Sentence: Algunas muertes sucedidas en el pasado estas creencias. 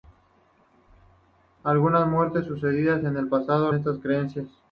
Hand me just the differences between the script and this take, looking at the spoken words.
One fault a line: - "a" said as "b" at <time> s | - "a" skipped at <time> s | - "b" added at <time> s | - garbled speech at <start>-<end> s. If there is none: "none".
none